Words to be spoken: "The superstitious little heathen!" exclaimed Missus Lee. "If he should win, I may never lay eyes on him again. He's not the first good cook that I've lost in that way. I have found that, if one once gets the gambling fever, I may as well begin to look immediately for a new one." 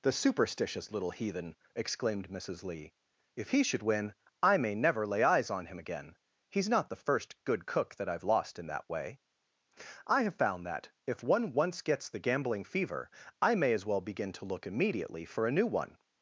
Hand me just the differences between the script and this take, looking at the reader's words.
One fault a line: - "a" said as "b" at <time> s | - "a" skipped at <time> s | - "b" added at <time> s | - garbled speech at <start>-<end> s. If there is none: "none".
none